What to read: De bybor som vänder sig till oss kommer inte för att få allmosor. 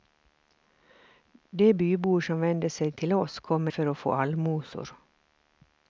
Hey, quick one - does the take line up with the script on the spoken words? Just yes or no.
no